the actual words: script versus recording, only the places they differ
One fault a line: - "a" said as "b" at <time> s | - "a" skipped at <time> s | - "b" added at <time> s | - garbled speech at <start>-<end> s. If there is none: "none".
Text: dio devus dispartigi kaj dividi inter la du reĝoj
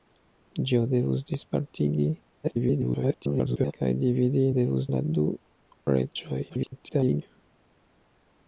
- garbled speech at 2.4-3.7 s
- "inter" said as "devus" at 4.6 s
- garbled speech at 6.5-7.2 s